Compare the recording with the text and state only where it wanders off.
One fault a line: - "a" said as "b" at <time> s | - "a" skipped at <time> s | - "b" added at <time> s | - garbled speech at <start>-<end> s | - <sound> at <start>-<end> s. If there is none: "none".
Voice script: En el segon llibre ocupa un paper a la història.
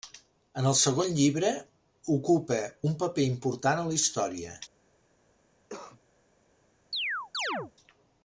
- "important" added at 3.3 s
- cough at 5.7-6.0 s
- chirp at 6.9-7.7 s